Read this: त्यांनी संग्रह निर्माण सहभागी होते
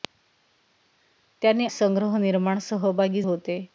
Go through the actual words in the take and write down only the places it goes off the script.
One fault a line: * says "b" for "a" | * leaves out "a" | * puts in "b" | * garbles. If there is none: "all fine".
all fine